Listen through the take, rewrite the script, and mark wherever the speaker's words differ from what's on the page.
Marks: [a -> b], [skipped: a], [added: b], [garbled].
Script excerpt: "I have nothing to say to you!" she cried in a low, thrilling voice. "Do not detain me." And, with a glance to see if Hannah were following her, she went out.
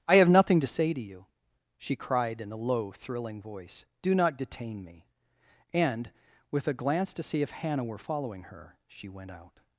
"I have nothing to say to you!" she cried in a low, thrilling voice. "Do not detain me." And, with a glance to see if Hannah were following her, she went out.